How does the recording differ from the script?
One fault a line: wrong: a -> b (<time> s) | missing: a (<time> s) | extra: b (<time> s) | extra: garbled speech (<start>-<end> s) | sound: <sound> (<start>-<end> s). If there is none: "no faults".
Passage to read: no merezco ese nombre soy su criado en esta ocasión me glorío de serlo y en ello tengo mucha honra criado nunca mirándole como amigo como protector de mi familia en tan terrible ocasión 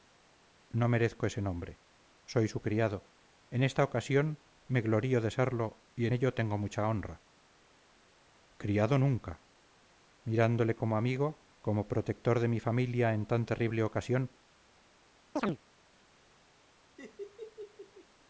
sound: chirp (15.4-15.6 s)
sound: laugh (17.0-18.1 s)